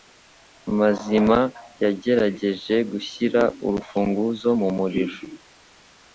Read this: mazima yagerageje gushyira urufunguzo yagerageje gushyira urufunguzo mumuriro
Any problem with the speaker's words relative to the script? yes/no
yes